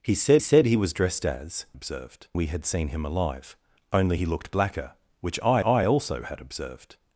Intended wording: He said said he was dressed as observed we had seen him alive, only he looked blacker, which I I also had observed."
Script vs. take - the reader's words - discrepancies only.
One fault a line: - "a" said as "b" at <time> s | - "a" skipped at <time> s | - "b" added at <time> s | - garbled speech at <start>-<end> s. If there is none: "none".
none